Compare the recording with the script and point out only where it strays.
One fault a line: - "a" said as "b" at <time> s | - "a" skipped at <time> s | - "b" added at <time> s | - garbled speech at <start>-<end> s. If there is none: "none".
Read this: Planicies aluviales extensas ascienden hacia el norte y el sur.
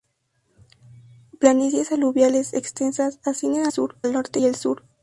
- "hacia" said as "sur" at 3.7 s